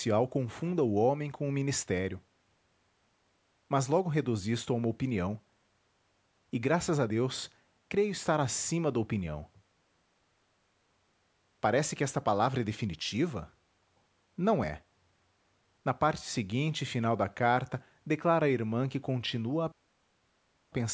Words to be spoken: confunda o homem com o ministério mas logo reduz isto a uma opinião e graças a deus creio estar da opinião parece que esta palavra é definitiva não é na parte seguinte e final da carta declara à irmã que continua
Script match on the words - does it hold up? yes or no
no